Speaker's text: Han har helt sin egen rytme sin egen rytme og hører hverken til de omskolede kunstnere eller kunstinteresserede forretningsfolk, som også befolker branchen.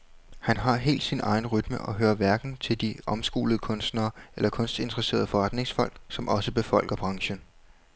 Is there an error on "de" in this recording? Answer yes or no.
no